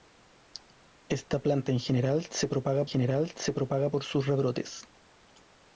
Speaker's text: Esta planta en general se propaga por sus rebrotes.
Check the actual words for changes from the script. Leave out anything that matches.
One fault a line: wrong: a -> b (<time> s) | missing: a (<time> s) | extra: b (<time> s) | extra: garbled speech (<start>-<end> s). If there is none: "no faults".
extra: general se propaga (2.8 s)